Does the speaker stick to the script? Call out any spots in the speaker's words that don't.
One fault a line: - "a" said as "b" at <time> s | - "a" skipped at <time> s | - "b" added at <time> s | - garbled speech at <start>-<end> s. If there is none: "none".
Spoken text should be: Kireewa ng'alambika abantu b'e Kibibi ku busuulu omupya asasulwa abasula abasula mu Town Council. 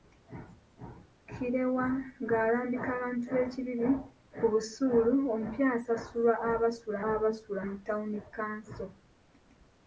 none